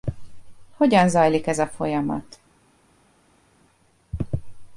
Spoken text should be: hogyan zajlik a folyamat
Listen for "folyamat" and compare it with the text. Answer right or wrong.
right